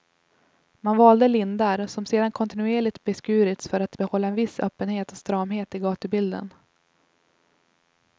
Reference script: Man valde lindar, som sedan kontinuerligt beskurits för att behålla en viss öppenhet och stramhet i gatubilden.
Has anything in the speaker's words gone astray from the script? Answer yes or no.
no